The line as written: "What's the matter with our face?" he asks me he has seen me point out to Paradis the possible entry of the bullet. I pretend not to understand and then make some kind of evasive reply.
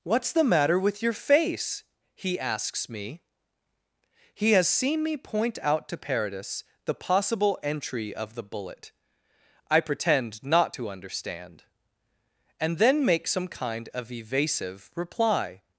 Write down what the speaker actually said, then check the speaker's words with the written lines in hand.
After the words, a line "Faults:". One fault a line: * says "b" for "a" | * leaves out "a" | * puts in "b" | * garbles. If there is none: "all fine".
"What's the matter with your face?" he asks me he has seen me point out to Paradis the possible entry of the bullet. I pretend not to understand and then make some kind of evasive reply.
Faults:
* says "your" for "our"